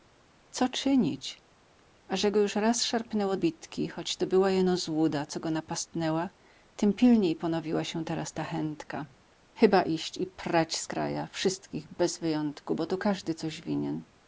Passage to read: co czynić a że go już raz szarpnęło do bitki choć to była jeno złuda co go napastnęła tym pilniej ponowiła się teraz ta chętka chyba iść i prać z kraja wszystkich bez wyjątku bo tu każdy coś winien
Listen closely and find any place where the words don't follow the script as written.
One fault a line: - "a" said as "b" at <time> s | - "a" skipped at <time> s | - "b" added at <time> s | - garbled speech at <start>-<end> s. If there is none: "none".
- "do" skipped at 3.4 s